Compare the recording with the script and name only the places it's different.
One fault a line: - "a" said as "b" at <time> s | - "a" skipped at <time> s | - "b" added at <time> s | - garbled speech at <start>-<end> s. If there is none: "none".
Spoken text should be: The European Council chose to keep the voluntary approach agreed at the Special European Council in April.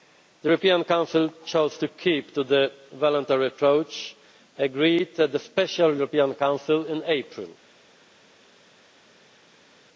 - "to" added at 2.3 s